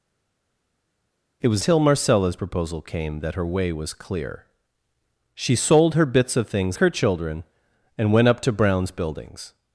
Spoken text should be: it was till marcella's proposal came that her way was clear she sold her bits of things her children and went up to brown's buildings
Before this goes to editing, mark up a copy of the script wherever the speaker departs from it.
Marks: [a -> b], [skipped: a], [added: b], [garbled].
it was till marcella's proposal came that her way was clear she sold her bits of things her children and went up to brown's buildings